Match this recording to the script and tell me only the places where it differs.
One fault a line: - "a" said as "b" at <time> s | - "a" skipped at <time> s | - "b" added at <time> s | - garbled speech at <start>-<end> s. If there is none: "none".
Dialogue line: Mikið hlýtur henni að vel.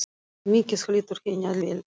none